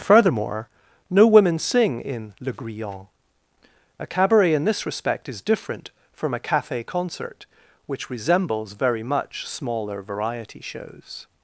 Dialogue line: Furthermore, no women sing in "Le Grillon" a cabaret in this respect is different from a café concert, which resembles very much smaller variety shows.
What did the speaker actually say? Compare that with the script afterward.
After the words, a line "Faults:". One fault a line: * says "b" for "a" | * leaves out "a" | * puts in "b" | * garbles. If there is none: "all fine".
Furthermore, no women sing in "Le Grillon" a cabaret in this respect is different from a café concert, which resembles very much smaller variety shows.
Faults:
all fine